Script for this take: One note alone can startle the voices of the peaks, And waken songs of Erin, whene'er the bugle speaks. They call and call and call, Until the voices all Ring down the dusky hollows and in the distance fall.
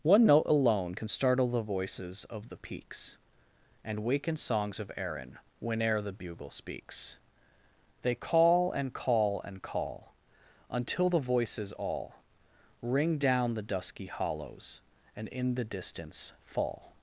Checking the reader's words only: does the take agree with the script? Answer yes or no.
yes